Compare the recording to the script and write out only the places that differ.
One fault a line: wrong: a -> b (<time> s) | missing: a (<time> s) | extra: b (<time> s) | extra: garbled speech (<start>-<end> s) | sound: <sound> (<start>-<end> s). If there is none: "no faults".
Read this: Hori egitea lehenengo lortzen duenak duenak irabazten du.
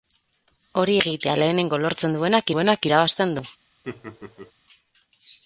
sound: laugh (3.8-4.5 s)